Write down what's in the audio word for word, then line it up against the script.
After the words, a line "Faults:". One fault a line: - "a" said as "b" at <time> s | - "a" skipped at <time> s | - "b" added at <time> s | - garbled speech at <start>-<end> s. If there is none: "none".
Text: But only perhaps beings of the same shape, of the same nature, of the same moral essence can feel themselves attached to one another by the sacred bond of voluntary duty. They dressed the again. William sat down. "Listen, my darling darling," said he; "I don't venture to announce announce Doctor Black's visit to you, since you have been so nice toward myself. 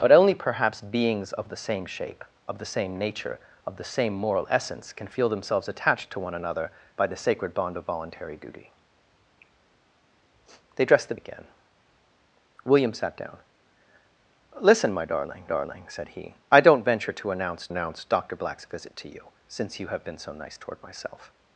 But only perhaps beings of the same shape, of the same nature, of the same moral essence can feel themselves attached to one another by the sacred bond of voluntary duty. They dressed the again. William sat down. "Listen, my darling darling," said he; "I don't venture to announce announce Doctor Black's visit to you, since you have been so nice toward myself.
Faults:
none